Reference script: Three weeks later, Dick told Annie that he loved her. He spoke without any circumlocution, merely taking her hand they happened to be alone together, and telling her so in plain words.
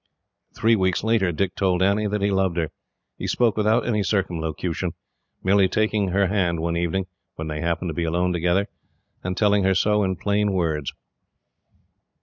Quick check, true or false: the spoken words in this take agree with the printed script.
false